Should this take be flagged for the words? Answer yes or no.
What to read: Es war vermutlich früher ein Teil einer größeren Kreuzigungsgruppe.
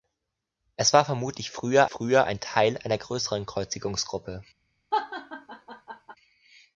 yes